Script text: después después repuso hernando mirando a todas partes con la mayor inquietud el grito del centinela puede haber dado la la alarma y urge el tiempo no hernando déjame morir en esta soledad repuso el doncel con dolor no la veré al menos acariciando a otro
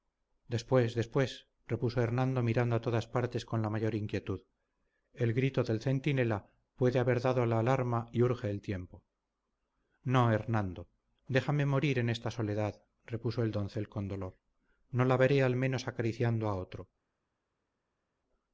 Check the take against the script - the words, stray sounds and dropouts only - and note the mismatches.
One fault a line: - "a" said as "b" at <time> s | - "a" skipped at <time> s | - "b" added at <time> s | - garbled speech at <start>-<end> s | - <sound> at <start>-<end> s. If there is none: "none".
- "la" skipped at 7.6 s